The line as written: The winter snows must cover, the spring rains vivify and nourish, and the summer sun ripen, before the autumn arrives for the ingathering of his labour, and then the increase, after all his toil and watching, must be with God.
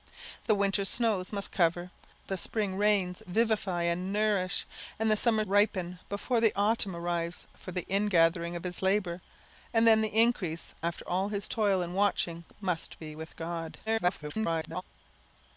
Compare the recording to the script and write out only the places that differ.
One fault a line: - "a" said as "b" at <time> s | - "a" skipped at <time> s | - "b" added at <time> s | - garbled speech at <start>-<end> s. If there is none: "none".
- "sun" skipped at 5.5 s
- garbled speech at 13.9-14.8 s